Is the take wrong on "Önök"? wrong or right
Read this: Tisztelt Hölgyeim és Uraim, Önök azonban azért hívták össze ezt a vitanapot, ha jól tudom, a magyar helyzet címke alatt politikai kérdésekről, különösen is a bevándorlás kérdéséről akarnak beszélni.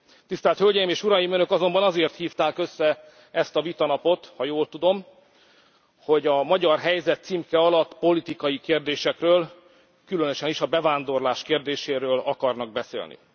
right